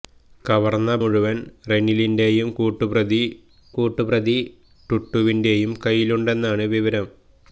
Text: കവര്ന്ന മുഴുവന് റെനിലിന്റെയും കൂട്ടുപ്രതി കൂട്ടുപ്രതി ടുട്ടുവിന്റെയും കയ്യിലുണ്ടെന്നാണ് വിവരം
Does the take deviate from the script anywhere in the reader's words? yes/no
no